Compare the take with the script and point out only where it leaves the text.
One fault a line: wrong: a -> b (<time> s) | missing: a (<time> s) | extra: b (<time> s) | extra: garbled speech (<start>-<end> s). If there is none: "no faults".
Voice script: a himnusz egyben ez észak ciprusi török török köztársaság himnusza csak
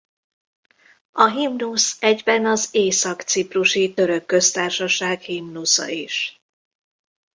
wrong: ez -> az (2.5 s)
missing: török (4.2 s)
wrong: csak -> is (5.9 s)